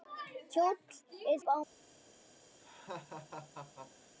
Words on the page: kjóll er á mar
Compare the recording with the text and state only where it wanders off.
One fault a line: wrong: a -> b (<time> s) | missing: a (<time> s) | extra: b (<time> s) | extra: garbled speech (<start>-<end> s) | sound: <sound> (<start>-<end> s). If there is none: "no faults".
sound: laugh (2.6-4.1 s)